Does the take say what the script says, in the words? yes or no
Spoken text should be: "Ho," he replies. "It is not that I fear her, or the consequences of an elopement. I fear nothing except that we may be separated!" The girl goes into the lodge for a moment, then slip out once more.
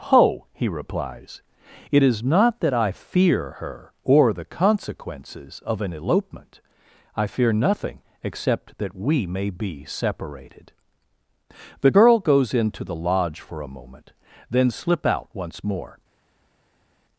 yes